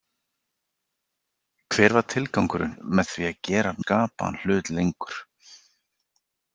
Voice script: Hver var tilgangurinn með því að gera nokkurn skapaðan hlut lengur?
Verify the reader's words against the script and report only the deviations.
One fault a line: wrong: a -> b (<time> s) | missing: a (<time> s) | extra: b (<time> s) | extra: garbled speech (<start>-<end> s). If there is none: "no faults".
missing: nokkurn (3.8 s)